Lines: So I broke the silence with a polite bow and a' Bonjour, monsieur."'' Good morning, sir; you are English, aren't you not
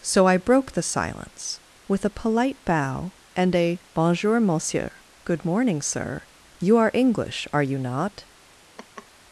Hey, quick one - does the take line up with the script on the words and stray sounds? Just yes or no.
no